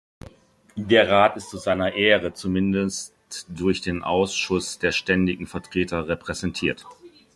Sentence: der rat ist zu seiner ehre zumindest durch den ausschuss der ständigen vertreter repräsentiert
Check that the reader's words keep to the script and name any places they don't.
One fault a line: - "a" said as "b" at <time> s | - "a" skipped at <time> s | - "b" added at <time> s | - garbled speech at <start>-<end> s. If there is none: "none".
none